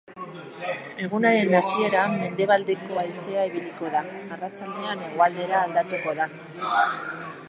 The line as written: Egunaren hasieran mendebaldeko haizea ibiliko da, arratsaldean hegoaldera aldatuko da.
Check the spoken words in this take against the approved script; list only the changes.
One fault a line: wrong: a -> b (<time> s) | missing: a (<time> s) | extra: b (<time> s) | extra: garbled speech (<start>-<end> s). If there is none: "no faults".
no faults